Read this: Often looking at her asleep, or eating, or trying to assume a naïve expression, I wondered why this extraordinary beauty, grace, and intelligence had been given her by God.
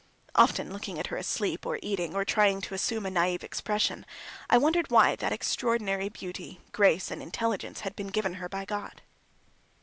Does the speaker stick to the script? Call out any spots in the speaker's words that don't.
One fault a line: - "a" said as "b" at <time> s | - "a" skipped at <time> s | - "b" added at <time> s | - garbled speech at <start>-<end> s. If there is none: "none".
- "this" said as "that" at 5.2 s